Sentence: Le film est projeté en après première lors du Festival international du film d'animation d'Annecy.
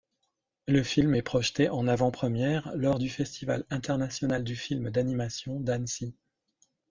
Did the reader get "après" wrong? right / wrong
wrong